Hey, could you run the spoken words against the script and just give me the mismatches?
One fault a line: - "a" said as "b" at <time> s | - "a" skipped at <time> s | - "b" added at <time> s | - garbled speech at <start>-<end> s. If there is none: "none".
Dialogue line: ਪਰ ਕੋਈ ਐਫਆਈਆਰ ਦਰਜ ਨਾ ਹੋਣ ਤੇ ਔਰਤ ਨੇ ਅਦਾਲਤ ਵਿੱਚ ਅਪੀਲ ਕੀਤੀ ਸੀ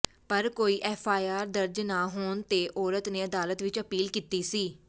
none